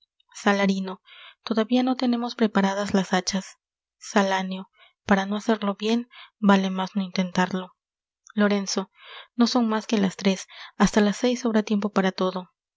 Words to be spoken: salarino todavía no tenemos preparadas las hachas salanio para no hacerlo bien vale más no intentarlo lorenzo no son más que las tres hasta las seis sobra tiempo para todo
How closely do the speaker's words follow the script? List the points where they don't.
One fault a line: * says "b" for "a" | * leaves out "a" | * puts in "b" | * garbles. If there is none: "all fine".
all fine